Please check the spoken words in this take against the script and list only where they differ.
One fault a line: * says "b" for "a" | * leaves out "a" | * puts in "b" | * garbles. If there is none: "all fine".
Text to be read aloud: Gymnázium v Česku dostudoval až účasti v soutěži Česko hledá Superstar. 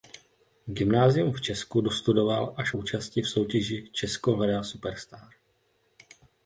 all fine